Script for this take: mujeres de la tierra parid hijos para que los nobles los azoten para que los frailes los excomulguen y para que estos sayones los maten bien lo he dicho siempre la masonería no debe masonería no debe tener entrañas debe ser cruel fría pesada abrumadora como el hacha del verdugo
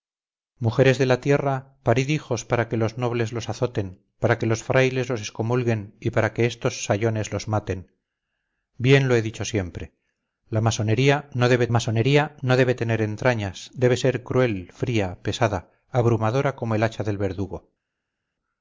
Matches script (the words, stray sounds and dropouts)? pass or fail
pass